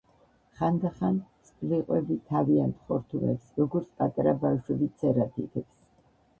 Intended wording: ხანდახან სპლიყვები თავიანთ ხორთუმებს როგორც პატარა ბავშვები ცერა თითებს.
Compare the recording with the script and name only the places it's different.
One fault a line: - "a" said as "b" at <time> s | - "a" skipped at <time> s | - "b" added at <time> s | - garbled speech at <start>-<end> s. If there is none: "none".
none